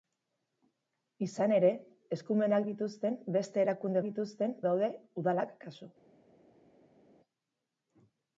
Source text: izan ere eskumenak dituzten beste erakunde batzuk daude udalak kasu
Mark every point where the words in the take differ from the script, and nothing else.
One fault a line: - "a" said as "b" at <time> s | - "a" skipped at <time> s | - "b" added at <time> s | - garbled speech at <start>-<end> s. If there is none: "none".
- "batzuk" said as "dituzten" at 4.1 s